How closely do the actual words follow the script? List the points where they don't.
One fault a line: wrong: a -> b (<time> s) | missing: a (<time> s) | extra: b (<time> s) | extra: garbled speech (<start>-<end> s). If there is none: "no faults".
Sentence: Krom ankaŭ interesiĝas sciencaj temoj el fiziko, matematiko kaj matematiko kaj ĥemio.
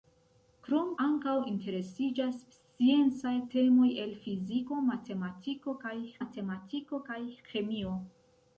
no faults